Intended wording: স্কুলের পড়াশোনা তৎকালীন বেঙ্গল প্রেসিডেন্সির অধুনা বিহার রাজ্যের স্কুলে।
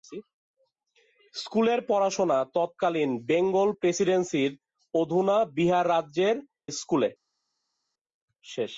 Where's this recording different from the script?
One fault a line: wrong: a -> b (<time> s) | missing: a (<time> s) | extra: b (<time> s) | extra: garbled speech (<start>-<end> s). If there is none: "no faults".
no faults